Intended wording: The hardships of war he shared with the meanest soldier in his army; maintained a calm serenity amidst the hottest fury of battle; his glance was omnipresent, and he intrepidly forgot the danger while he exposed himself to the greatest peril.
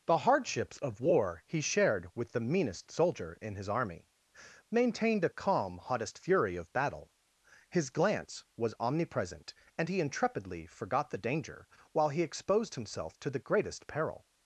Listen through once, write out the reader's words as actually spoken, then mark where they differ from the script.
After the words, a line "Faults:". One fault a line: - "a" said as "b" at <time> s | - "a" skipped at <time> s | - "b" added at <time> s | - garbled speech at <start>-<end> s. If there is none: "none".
The hardships of war he shared with the meanest soldier in his army; maintained a calm hottest fury of battle; his glance was omnipresent, and he intrepidly forgot the danger while he exposed himself to the greatest peril.
Faults:
- "serenity amidst the" skipped at 5.8 s